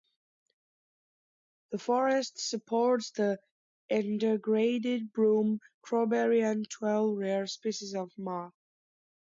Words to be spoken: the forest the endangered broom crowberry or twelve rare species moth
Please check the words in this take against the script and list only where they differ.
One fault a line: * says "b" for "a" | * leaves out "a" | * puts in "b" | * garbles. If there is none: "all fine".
* puts in "supports"
* says "and" for "or"
* puts in "of"